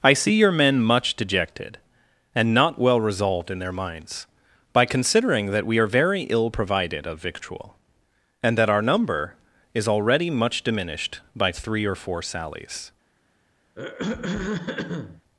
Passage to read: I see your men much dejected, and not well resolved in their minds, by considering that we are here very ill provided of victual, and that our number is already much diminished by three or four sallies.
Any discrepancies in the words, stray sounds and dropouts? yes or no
yes